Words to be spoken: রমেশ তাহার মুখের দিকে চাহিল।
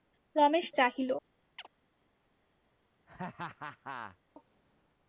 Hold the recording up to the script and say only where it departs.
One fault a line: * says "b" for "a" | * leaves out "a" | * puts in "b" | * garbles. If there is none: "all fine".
* leaves out "তাহার মুখের দিকে"